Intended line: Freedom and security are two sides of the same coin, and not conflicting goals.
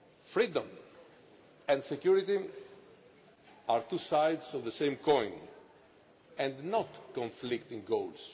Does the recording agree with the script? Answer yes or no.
yes